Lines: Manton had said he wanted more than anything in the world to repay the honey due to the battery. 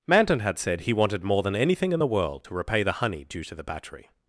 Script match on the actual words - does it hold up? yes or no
yes